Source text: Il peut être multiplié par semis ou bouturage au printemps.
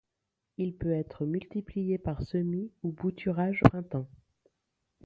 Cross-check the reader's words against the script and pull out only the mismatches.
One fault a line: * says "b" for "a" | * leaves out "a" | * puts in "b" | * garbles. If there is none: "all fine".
* leaves out "au"